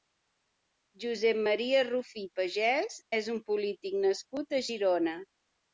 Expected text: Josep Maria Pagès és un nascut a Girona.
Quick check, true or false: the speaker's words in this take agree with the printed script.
false